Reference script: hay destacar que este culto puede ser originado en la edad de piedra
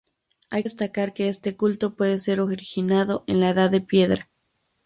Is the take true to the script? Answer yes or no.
yes